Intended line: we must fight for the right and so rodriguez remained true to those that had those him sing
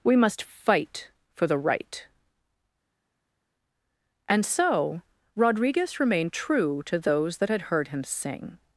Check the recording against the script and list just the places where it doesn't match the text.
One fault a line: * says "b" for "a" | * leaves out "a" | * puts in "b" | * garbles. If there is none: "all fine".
* says "heard" for "those"